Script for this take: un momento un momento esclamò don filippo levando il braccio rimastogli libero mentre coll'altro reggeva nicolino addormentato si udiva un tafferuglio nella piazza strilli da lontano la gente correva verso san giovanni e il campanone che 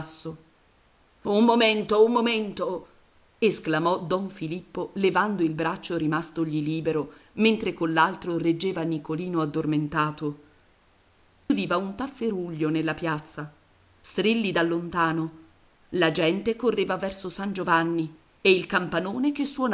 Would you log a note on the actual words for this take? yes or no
yes